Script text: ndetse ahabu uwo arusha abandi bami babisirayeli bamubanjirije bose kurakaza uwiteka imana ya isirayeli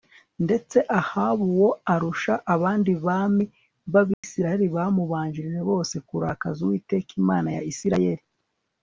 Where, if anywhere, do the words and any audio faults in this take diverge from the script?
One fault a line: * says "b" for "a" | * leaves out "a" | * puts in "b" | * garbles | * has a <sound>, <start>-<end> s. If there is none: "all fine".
* has a dropout, 4.1-4.2 s